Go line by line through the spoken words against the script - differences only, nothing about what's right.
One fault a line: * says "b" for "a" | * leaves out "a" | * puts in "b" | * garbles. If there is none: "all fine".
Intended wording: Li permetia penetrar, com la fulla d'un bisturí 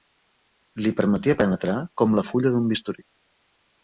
all fine